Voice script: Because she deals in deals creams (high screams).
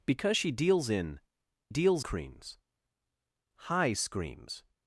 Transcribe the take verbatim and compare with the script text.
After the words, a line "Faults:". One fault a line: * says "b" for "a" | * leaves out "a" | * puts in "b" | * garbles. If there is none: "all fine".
Because she deals in deals creams (high screams).
Faults:
all fine